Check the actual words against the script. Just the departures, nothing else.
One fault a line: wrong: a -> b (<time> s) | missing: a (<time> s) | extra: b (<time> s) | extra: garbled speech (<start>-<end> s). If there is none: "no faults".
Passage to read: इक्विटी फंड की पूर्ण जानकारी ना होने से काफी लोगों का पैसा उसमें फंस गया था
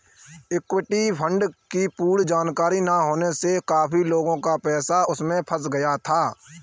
no faults